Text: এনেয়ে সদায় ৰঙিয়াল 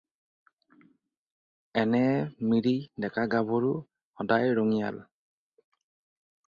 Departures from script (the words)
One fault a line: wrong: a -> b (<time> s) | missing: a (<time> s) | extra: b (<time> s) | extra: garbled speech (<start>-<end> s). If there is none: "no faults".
extra: মিৰি ডেকা-গাভৰু (2.5 s)